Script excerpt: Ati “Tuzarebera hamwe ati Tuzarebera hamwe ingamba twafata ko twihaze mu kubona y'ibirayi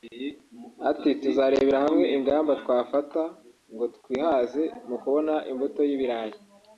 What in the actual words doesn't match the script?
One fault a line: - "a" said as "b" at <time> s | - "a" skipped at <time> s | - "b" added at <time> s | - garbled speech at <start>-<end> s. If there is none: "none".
- "ati Tuzarebera hamwe" skipped at 2.0 s
- "ko" said as "ngo" at 3.7 s
- "imbuto" added at 5.5 s